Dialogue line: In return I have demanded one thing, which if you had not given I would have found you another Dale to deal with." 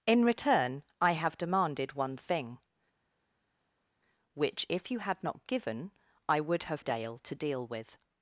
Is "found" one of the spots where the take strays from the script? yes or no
yes